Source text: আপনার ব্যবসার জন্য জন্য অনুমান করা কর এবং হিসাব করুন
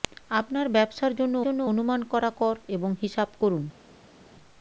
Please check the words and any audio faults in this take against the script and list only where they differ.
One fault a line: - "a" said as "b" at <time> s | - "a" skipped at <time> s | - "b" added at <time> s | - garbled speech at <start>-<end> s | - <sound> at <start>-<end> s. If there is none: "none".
none